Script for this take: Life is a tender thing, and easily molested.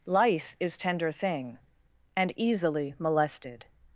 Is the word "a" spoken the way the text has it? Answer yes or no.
no